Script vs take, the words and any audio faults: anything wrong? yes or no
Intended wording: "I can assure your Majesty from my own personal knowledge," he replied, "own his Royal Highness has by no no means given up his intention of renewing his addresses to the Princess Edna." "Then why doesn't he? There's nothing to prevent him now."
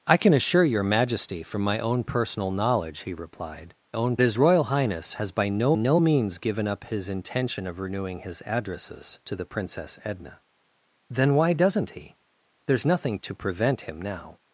no